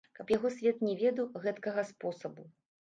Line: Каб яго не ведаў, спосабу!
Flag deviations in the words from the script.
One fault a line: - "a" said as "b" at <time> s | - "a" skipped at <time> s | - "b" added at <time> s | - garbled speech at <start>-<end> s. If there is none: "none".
- "свет" added at 0.6 s
- "гэткага" added at 1.5 s